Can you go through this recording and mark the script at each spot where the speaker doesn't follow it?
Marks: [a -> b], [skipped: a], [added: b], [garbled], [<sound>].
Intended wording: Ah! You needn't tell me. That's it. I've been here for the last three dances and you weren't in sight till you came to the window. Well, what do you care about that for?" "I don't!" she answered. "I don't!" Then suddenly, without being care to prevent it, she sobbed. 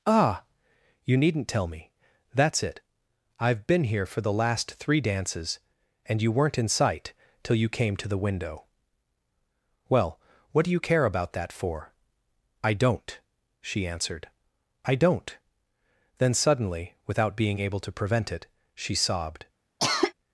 Ah! You needn't tell me. That's it. I've been here for the last three dances and you weren't in sight till you came to the window. Well, what do you care about that for?" "I don't!" she answered. "I don't!" Then suddenly, without being [care -> able] to prevent it, she sobbed. [cough]